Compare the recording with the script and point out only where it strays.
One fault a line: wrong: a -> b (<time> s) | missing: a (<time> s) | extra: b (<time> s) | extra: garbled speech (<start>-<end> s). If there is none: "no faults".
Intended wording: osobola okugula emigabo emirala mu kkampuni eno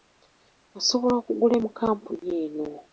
missing: emigabo emirala (1.5 s)